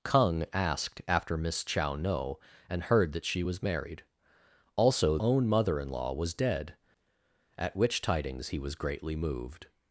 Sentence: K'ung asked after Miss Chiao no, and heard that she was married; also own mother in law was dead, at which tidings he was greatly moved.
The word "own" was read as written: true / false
true